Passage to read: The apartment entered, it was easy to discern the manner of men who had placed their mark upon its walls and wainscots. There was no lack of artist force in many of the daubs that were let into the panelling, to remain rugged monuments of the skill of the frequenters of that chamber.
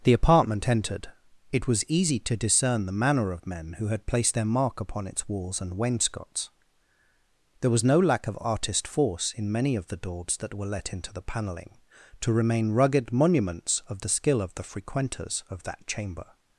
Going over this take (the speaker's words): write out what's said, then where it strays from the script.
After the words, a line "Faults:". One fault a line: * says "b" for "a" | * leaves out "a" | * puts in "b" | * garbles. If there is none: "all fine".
The apartment entered, it was easy to discern the manner of men who had placed their mark upon its walls and wainscots. There was no lack of artist force in many of the daubs that were let into the panelling, to remain rugged monuments of the skill of the frequenters of that chamber.
Faults:
all fine